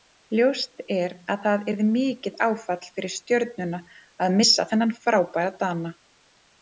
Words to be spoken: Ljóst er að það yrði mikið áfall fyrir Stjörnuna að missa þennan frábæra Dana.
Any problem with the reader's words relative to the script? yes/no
no